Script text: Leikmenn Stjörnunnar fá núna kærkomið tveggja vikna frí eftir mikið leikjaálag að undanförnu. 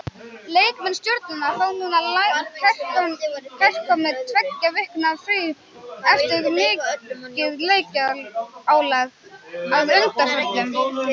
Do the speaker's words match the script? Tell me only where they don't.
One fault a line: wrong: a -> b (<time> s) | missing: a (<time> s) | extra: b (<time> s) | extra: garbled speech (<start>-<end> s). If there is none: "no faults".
no faults